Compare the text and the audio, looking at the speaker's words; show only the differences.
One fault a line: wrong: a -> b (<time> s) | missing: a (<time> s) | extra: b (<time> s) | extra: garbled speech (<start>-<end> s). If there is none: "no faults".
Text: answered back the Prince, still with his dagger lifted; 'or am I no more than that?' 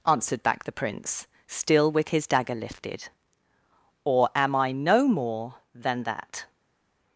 no faults